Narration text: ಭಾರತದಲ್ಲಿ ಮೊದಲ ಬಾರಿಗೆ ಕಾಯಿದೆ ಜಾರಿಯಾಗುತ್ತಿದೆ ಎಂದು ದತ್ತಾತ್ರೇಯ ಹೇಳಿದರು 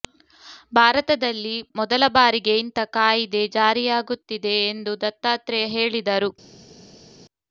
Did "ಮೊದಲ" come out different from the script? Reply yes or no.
no